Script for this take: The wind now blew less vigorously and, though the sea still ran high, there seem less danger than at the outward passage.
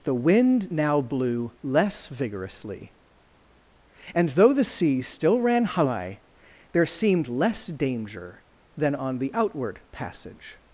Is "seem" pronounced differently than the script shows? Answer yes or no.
yes